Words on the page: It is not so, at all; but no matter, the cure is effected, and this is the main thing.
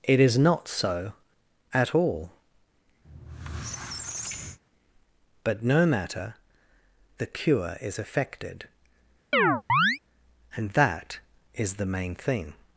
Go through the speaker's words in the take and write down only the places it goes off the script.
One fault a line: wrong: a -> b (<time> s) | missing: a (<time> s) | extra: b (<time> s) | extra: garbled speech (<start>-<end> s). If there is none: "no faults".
wrong: this -> that (10.7 s)